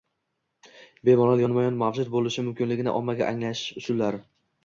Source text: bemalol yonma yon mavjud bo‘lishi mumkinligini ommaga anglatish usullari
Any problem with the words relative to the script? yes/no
no